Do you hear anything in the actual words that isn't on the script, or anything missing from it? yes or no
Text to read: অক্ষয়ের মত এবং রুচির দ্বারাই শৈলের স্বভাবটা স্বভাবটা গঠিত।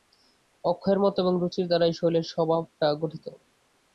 yes